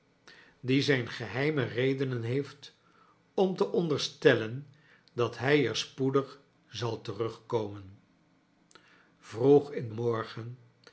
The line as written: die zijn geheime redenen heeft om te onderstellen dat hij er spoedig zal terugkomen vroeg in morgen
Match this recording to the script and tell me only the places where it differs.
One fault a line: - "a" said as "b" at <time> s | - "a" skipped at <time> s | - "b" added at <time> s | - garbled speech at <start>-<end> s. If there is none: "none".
none